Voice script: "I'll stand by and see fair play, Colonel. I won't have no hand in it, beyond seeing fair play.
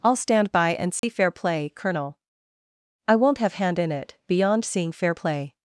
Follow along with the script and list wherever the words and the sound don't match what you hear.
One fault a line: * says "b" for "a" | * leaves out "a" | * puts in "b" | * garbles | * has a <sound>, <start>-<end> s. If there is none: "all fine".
* has a dropout, 1.0-1.0 s
* leaves out "no"